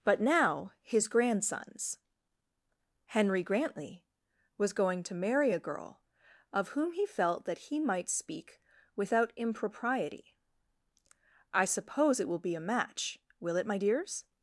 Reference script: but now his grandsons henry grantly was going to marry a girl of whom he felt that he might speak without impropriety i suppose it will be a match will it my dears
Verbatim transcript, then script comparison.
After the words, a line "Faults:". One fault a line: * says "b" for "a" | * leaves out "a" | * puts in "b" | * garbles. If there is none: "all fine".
but now his grandsons henry grantly was going to marry a girl of whom he felt that he might speak without impropriety i suppose it will be a match will it my dears
Faults:
all fine